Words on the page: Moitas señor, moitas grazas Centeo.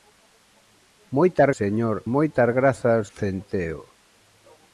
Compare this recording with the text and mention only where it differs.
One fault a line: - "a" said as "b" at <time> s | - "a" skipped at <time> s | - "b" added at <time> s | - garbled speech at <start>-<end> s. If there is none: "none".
none